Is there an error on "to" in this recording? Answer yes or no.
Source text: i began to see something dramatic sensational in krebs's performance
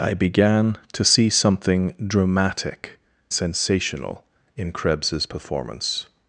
no